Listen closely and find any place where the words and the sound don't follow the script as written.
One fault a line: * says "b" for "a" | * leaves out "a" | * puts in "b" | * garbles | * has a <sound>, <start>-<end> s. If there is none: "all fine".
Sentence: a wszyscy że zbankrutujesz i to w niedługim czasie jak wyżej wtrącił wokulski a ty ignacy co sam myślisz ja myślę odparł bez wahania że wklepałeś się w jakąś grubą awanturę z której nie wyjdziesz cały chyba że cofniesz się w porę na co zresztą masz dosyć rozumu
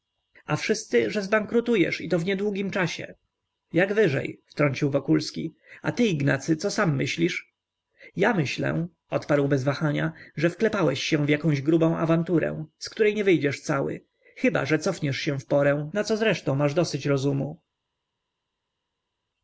all fine